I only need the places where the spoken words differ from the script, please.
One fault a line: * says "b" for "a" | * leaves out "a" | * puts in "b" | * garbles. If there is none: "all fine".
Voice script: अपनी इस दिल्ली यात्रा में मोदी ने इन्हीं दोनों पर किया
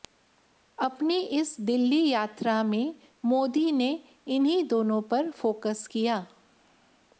* puts in "फोकस"